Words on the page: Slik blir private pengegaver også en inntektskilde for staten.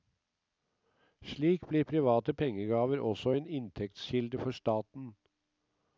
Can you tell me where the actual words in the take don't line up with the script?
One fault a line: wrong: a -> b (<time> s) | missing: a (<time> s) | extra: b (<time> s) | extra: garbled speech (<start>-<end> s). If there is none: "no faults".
no faults